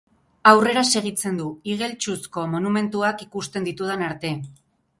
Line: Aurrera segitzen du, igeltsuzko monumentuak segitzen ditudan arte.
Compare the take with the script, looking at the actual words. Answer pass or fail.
fail